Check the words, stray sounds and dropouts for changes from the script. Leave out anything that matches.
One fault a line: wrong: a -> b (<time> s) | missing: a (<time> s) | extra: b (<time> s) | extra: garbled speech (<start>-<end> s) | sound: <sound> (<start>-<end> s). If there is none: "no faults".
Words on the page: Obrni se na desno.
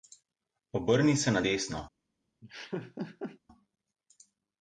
sound: laugh (2.4-3.4 s)